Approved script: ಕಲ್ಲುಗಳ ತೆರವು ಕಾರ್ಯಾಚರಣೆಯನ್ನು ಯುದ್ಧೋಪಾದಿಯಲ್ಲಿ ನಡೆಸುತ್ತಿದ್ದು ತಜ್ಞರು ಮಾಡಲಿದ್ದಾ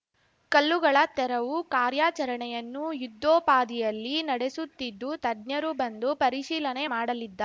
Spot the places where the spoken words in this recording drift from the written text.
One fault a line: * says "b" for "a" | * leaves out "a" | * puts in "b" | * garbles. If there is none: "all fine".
* puts in "ಬಂದು ಪರಿಶೀಲನೆ"